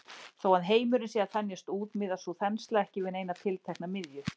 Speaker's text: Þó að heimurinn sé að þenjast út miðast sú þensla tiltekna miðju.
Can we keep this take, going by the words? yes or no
no